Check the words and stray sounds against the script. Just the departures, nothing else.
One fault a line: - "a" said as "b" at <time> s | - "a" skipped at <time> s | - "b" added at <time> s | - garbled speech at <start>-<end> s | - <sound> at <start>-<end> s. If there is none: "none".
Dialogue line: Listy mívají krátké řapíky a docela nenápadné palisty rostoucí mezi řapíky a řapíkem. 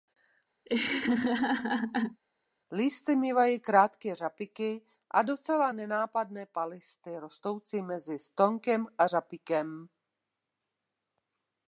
- laugh at 0.7-2.2 s
- "řapíky" said as "stonkem" at 8.2 s